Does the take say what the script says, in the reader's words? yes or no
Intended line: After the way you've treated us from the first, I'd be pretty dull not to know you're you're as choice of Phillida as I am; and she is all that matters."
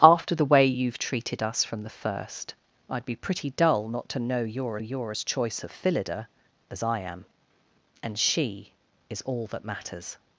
yes